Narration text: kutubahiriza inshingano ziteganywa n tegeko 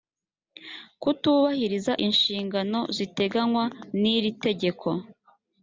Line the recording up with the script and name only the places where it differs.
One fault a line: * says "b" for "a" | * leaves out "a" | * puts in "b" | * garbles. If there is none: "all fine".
* puts in "iri"